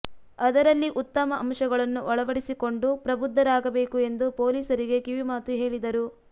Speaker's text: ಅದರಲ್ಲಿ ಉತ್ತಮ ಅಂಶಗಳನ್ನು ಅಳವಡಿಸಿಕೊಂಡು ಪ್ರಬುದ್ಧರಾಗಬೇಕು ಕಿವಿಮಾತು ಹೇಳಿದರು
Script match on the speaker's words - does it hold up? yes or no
no